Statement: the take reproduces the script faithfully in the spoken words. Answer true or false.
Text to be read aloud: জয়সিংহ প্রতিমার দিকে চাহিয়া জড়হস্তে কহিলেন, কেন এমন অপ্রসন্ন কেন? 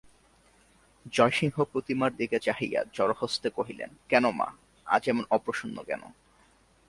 false